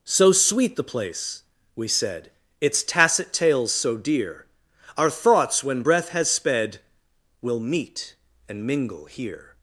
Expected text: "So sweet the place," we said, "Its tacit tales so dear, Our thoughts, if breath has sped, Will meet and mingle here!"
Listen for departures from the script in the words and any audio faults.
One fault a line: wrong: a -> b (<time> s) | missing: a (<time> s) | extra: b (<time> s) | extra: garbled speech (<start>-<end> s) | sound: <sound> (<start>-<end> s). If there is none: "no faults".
wrong: if -> when (5.6 s)